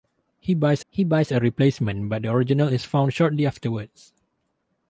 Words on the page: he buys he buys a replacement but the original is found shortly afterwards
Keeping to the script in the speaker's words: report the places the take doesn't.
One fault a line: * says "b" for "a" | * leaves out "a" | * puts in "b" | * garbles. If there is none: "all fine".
all fine